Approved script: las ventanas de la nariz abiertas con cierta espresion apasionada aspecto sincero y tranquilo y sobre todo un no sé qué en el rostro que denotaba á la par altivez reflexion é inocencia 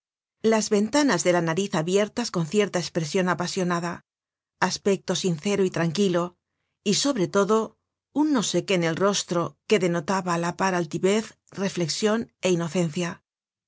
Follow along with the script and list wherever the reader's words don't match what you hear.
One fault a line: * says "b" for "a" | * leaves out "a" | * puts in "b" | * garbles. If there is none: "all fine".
all fine